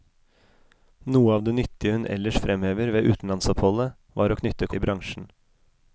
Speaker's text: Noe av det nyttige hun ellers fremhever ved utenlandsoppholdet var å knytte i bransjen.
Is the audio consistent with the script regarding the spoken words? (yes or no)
yes